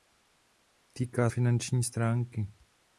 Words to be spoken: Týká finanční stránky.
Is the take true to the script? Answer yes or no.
yes